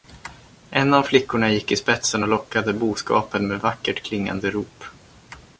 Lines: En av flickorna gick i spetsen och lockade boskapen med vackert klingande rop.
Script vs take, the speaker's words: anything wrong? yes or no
no